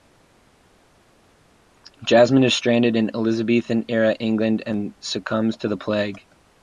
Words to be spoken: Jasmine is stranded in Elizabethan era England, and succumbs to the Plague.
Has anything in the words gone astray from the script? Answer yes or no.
no